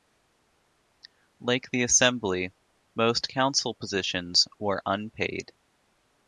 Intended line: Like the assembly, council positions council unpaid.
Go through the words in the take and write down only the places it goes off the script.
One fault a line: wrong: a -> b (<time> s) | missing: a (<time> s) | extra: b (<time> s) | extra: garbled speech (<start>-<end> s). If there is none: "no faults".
extra: most (3.0 s)
wrong: council -> were (4.6 s)